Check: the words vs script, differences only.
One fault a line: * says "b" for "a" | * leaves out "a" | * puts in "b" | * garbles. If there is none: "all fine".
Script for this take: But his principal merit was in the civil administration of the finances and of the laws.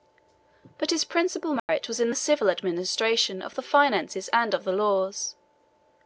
all fine